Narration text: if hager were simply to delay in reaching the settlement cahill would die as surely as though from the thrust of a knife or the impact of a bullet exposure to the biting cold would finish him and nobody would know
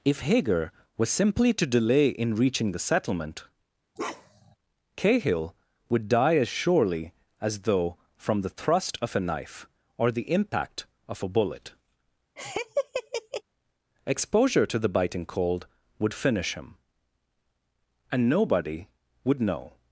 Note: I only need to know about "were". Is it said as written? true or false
false